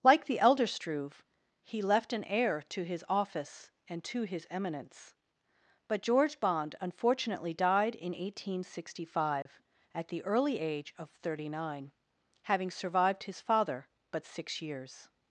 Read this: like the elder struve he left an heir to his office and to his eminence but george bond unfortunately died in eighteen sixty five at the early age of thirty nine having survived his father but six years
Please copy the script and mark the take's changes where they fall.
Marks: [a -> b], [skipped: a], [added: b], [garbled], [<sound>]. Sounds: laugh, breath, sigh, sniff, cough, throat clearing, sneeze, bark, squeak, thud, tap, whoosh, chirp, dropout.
like the elder struve he left an heir to his office and to his eminence but george bond unfortunately died in eighteen sixty five [dropout] at the early age of thirty nine having survived his father but six years